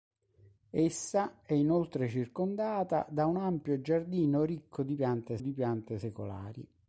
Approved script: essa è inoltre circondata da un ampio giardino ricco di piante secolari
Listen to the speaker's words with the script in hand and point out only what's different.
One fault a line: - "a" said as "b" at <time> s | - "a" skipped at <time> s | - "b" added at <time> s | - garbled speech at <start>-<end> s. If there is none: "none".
- "di piante" added at 5.4 s